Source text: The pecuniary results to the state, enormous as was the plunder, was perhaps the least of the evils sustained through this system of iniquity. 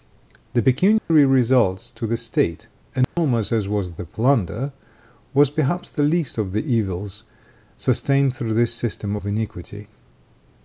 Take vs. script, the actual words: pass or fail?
pass